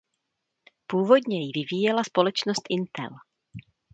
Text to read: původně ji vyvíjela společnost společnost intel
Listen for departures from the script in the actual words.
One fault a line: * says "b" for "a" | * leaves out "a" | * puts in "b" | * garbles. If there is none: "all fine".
* leaves out "společnost"